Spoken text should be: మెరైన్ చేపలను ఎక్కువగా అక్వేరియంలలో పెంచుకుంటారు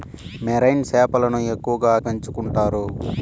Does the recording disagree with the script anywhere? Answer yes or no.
yes